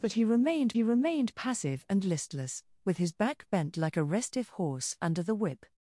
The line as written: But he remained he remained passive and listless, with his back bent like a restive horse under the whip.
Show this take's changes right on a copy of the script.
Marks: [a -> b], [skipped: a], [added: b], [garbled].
But he remained he remained passive and listless, with his back bent like a restive horse under the whip.